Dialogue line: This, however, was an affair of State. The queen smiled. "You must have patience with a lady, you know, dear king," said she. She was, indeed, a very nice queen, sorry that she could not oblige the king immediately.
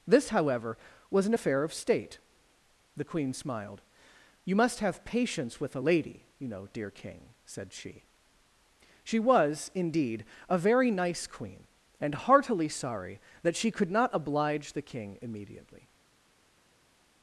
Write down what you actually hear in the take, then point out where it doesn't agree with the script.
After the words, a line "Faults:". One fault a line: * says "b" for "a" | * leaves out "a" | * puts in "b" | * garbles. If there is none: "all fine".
This, however, was an affair of State. The queen smiled. "You must have patience with a lady, you know, dear king," said she. She was, indeed, a very nice queen, and heartily sorry that she could not oblige the king immediately.
Faults:
* puts in "and heartily"